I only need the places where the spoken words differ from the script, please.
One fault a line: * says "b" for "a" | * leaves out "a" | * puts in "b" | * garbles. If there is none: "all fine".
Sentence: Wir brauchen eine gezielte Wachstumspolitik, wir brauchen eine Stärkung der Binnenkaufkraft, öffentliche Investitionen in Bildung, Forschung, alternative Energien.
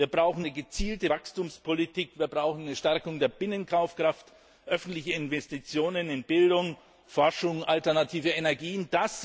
all fine